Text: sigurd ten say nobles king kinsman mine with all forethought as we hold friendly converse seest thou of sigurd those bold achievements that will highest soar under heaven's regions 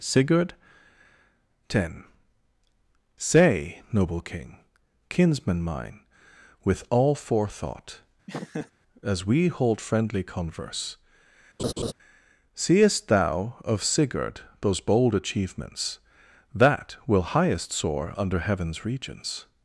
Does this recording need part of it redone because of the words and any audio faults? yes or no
yes